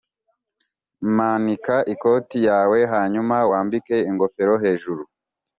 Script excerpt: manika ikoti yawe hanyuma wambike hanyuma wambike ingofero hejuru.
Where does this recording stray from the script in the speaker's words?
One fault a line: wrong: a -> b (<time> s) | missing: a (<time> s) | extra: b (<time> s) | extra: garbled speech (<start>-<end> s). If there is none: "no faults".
missing: hanyuma wambike (4.0 s)